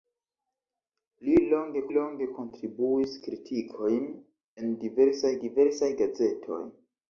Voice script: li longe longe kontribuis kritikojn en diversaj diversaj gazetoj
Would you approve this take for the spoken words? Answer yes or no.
yes